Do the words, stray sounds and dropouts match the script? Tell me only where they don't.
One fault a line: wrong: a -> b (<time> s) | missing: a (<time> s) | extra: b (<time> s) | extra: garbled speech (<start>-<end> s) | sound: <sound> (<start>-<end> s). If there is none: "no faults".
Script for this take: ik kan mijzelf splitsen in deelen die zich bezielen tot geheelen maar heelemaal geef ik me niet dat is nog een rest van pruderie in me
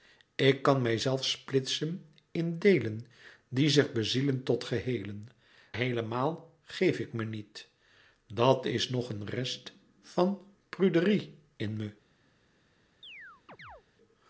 missing: maar (5.3 s)
sound: chirp (13.0-13.8 s)